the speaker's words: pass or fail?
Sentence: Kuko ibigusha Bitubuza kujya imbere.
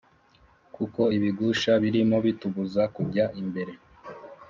fail